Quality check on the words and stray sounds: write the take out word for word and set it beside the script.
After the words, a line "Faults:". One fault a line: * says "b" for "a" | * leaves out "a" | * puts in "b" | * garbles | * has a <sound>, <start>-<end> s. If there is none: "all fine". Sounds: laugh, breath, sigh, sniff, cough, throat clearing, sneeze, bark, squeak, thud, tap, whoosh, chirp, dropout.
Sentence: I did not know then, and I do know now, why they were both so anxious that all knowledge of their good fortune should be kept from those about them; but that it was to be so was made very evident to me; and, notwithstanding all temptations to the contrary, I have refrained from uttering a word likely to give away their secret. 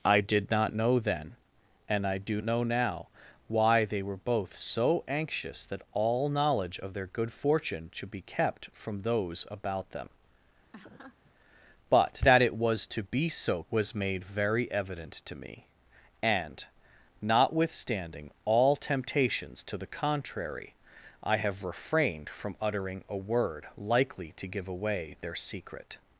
I did not know then, and I do know now, why they were both so anxious that all knowledge of their good fortune should be kept from those about them; but that it was to be so was made very evident to me; and, notwithstanding all temptations to the contrary, I have refrained from uttering a word likely to give away their secret.
Faults:
* has a laugh, 10.7-11.3 s